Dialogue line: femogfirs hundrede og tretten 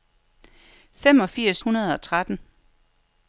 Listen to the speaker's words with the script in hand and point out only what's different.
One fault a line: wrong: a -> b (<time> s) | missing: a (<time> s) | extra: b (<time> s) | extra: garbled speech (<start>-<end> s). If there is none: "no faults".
no faults